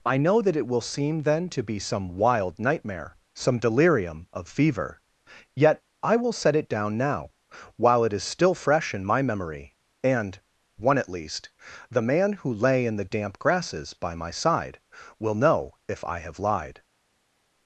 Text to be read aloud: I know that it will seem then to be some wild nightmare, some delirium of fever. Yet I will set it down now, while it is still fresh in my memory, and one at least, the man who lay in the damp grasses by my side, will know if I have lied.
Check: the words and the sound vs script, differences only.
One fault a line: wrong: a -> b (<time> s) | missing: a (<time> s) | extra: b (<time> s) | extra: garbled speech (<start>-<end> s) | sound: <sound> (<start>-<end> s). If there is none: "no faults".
no faults